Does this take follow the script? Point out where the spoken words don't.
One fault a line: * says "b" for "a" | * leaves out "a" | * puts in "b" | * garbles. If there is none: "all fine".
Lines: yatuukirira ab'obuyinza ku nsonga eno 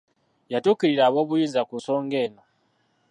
all fine